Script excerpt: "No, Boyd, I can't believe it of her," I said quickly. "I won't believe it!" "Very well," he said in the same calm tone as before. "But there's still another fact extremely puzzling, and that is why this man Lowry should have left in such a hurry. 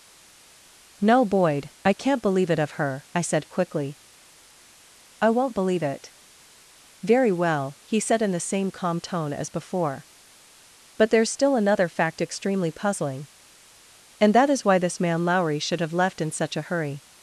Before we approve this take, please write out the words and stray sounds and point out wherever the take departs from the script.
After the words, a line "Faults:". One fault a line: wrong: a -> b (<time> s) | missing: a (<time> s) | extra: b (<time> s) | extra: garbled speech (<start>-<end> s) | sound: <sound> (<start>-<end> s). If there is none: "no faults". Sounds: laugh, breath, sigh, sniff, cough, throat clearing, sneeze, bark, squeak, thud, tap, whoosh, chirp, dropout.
"No, Boyd, I can't believe it of her," I said quickly. "I won't believe it!" "Very well," he said in the same calm tone as before. "But there's still another fact extremely puzzling, and that is why this man Lowry should have left in such a hurry.
Faults:
no faults